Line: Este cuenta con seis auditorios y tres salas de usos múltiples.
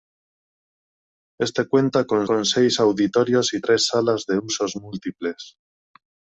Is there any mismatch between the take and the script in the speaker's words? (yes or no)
yes